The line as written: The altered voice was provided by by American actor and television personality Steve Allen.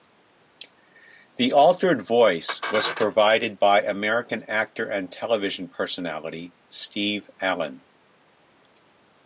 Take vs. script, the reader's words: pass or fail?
fail